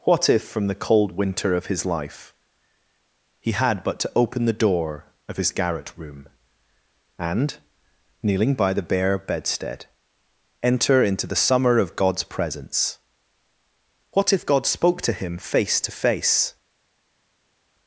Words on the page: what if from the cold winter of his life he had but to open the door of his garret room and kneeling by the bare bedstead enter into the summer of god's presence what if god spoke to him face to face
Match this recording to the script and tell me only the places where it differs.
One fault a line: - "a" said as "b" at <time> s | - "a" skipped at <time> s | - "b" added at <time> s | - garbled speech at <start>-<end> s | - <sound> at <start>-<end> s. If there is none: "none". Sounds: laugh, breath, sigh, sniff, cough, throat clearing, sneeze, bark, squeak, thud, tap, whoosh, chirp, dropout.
none